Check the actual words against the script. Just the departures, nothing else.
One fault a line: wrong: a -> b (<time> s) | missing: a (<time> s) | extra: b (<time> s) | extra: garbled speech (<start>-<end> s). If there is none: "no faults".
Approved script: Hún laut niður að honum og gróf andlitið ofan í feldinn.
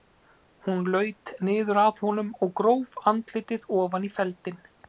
no faults